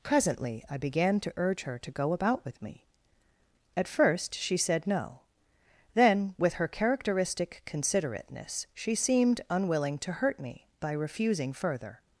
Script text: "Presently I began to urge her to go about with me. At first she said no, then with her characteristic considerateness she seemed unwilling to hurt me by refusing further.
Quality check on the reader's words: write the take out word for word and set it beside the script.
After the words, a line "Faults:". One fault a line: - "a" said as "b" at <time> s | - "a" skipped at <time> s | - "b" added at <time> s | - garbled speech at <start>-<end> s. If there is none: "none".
"Presently I began to urge her to go about with me. At first she said no, then with her characteristic considerateness she seemed unwilling to hurt me by refusing further.
Faults:
none